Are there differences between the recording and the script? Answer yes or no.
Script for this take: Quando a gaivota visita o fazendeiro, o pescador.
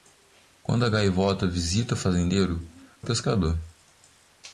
no